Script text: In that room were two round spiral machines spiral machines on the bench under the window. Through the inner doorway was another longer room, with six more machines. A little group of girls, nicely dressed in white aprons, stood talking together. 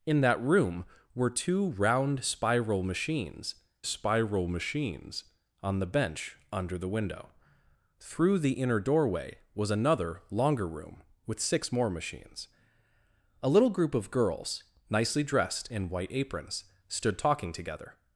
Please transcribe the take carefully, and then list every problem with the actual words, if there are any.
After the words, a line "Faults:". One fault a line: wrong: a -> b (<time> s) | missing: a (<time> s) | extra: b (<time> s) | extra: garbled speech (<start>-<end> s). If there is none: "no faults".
In that room were two round spiral machines spiral machines on the bench under the window. Through the inner doorway was another longer room, with six more machines. A little group of girls, nicely dressed in white aprons, stood talking together.
Faults:
no faults